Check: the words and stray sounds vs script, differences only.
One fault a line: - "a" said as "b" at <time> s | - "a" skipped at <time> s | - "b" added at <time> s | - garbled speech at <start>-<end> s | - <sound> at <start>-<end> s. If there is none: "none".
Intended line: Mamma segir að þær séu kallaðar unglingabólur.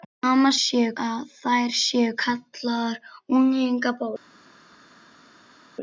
- "segir" said as "séu" at 0.6 s